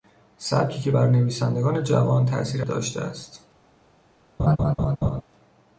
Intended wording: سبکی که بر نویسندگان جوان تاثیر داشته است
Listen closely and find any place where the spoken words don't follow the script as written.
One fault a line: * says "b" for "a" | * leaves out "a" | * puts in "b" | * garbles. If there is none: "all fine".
all fine